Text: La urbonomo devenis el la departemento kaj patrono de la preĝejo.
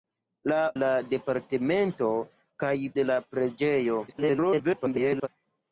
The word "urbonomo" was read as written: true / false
false